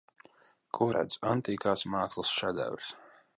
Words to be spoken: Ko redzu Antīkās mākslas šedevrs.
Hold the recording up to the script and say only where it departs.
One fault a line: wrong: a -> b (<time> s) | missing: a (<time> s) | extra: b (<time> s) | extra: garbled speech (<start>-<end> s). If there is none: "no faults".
no faults